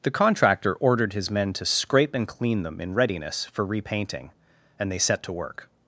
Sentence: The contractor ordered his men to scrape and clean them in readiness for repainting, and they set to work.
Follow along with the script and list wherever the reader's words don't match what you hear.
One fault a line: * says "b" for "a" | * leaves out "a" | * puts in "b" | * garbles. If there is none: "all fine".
all fine